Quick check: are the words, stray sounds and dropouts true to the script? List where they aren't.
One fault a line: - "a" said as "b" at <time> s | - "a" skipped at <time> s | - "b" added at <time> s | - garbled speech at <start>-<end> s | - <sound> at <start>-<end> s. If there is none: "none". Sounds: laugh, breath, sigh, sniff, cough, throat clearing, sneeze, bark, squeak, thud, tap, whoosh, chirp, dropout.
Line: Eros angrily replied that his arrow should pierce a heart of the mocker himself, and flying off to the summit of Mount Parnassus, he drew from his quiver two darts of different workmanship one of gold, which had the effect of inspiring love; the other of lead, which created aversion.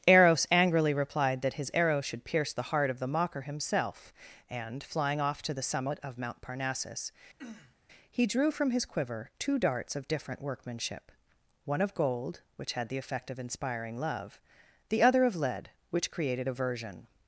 - "a" said as "the" at 2.5 s
- throat clearing at 7.4-7.7 s